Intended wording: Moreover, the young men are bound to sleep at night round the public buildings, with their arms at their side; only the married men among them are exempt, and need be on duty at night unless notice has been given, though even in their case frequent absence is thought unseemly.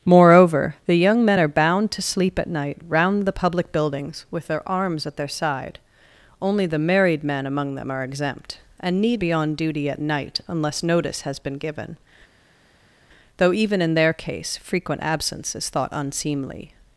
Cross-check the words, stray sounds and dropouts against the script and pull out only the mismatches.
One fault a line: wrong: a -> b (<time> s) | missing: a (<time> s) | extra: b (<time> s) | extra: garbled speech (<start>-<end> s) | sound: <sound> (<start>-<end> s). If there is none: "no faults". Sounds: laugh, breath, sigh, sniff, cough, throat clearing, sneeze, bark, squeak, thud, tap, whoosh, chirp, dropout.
no faults